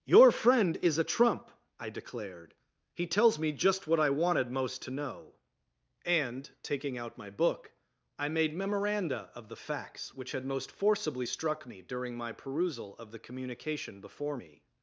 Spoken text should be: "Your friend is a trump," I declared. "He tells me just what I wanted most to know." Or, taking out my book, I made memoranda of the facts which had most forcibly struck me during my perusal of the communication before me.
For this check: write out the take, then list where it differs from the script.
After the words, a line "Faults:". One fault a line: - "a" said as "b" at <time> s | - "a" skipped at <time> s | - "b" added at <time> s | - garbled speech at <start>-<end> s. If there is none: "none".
"Your friend is a trump," I declared. "He tells me just what I wanted most to know." And, taking out my book, I made memoranda of the facts which had most forcibly struck me during my perusal of the communication before me.
Faults:
- "Or" said as "And" at 6.1 s